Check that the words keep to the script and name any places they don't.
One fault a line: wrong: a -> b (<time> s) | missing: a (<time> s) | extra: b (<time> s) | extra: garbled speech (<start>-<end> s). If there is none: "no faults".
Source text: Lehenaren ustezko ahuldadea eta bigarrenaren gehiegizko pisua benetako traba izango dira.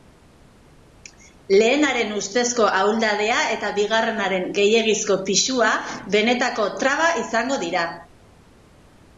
no faults